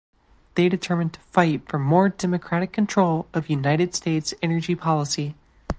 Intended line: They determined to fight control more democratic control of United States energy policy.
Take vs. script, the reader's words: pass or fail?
fail